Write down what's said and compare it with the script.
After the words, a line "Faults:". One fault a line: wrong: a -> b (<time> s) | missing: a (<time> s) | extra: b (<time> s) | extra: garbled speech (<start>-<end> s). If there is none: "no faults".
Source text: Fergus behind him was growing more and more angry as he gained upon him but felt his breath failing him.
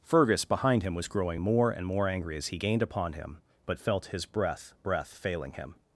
Fergus behind him was growing more and more angry as he gained upon him but felt his breath breath failing him.
Faults:
extra: breath (4.8 s)